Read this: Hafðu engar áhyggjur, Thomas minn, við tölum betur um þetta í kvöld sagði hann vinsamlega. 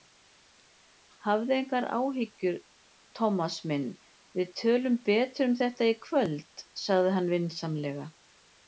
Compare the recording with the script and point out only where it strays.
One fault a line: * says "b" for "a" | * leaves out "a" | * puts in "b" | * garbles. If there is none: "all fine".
all fine